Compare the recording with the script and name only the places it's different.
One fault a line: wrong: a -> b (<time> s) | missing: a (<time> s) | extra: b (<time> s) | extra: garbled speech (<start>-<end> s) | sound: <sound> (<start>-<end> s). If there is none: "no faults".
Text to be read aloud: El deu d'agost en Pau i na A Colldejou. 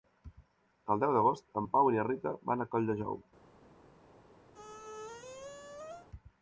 extra: Rita van (2.1 s)
sound: squeak (4.5-6.1 s)